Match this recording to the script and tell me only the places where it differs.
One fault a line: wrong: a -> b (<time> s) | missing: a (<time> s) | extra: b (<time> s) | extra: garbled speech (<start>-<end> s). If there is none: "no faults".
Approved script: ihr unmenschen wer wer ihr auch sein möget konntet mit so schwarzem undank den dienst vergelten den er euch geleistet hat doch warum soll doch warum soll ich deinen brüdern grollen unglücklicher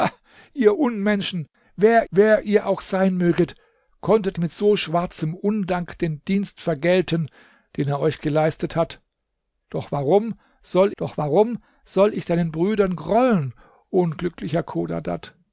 no faults